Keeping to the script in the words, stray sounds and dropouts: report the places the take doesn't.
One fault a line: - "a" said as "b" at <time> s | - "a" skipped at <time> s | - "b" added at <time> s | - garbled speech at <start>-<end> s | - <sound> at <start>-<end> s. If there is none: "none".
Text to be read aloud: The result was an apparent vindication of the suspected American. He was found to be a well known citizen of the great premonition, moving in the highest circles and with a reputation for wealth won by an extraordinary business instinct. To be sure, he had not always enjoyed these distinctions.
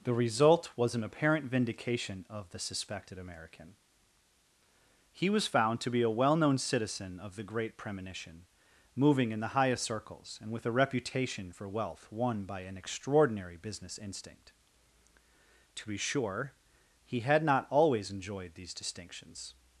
none